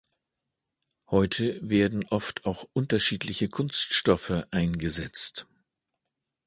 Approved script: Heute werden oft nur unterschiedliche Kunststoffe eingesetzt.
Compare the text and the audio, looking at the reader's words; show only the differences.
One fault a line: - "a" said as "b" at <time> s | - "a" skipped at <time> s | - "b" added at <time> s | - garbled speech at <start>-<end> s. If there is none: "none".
- "nur" said as "auch" at 2.5 s